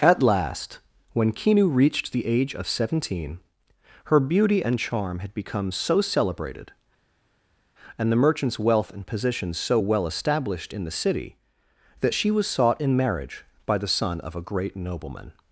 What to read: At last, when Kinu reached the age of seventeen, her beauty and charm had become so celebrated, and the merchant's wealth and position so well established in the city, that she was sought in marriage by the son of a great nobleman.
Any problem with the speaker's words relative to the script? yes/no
no